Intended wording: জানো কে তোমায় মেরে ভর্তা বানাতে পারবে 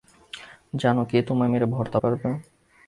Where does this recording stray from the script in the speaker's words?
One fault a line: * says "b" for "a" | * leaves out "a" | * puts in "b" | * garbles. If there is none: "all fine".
* leaves out "বানাতে"